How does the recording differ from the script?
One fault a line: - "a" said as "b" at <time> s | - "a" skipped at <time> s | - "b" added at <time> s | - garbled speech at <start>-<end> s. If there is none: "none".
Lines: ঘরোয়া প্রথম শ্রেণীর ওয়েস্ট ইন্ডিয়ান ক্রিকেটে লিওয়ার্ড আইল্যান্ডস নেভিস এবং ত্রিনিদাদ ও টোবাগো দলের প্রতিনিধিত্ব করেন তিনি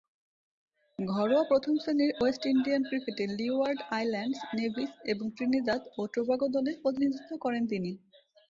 none